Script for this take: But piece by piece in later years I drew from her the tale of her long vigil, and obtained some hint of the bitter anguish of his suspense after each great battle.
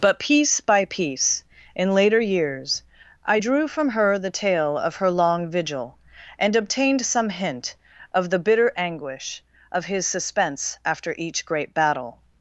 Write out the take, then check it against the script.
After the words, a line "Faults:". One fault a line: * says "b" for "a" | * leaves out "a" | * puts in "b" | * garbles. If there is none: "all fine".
But piece by piece in later years I drew from her the tale of her long vigil, and obtained some hint of the bitter anguish of his suspense after each great battle.
Faults:
all fine